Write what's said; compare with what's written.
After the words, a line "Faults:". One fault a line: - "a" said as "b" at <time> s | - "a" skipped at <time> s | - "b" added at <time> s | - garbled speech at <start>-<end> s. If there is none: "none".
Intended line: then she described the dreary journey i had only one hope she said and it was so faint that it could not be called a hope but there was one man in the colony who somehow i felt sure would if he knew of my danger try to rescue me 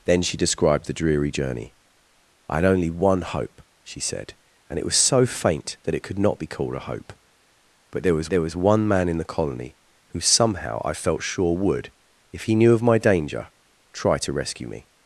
then she described the dreary journey i had only one hope she said and it was so faint that it could not be called a hope but there was there was one man in the colony who somehow i felt sure would if he knew of my danger try to rescue me
Faults:
- "there was" added at 8.3 s